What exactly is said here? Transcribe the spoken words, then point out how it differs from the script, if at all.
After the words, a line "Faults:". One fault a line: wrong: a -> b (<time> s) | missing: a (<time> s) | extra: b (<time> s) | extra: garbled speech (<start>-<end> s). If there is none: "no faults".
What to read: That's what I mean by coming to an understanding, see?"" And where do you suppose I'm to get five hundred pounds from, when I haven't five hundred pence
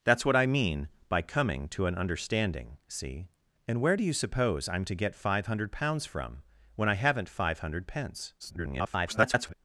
That's what I mean by coming to an understanding, see?"" And where do you suppose I'm to get five hundred pounds from, when I haven't five hundred pence [garbled]
Faults:
extra: garbled speech (8.4-9.5 s)